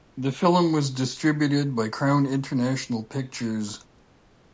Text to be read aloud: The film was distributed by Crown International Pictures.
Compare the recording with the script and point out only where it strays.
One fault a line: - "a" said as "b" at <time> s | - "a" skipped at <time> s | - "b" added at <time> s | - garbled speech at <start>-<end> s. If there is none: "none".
none